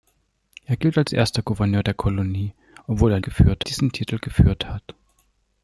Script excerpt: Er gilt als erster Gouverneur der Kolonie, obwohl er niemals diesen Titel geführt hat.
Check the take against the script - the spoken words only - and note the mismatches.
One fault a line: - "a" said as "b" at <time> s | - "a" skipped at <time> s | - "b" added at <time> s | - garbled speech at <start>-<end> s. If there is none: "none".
- "niemals" said as "geführt" at 3.2 s